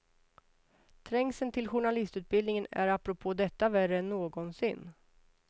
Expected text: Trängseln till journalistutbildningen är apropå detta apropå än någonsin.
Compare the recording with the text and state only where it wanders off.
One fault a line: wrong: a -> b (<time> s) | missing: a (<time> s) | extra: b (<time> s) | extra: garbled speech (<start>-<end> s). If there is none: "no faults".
wrong: apropå -> värre (3.7 s)